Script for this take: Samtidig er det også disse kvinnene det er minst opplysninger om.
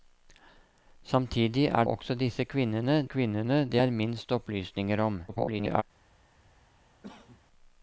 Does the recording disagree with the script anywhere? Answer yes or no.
yes